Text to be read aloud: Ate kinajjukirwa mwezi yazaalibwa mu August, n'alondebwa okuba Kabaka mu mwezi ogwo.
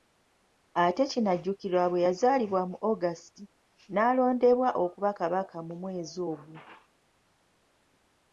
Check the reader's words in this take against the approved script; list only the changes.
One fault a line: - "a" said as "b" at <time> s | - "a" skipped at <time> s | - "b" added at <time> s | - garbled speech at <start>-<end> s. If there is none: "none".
- "mwezi" said as "bwe" at 1.9 s